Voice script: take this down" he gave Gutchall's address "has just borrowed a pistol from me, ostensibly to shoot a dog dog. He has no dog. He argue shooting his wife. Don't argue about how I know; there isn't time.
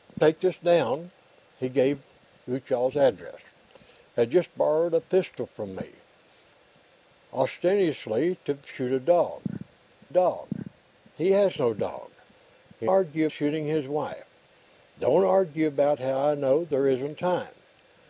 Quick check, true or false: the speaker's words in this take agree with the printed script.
true